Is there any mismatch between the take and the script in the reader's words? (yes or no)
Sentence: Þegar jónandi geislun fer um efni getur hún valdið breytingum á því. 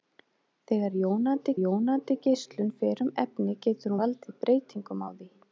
yes